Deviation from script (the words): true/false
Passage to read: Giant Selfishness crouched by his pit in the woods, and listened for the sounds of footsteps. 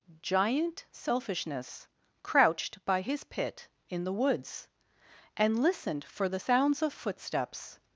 false